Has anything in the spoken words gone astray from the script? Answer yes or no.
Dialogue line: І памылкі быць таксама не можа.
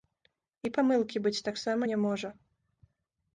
no